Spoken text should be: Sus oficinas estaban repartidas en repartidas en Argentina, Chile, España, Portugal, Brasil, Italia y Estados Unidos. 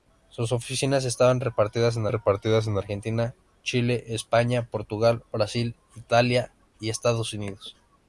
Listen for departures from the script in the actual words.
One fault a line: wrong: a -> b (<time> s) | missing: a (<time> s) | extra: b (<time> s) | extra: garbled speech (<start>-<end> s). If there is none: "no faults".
no faults